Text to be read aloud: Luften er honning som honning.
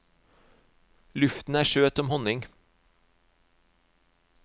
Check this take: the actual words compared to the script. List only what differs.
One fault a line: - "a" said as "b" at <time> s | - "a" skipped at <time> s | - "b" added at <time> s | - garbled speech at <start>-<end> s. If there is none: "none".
- "honning" said as "søt" at 1.6 s